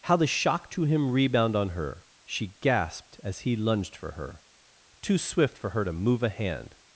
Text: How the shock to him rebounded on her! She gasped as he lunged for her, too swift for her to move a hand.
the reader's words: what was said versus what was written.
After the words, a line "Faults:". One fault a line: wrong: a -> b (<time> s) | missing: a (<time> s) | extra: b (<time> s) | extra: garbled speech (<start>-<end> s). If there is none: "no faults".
How the shock to him rebound on her! She gasped as he lunged for her, too swift for her to move a hand.
Faults:
wrong: rebounded -> rebound (1.1 s)